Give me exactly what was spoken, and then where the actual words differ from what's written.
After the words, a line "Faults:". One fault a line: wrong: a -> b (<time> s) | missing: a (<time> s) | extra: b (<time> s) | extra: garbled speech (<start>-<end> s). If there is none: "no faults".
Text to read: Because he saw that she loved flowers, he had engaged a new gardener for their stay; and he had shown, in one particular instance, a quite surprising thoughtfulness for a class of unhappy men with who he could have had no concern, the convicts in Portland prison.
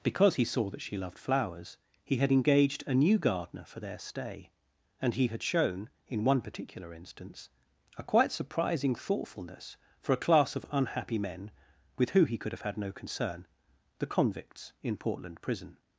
Because he saw that she loved flowers, he had engaged a new gardener for their stay; and he had shown, in one particular instance, a quite surprising thoughtfulness for a class of unhappy men with who he could have had no concern, the convicts in Portland prison.
Faults:
no faults